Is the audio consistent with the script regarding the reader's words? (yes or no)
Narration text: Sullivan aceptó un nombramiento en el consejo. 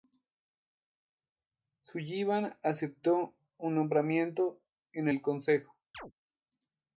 yes